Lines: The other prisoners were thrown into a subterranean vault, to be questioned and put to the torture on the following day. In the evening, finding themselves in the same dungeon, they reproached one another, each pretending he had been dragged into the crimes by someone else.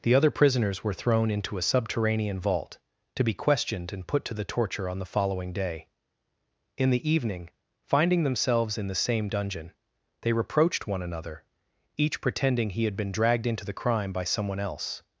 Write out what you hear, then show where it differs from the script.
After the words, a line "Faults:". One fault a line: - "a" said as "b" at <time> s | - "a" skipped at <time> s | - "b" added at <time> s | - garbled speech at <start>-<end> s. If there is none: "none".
The other prisoners were thrown into a subterranean vault, to be questioned and put to the torture on the following day. In the evening, finding themselves in the same dungeon, they reproached one another, each pretending he had been dragged into the crime by someone else.
Faults:
- "crimes" said as "crime" at 13.7 s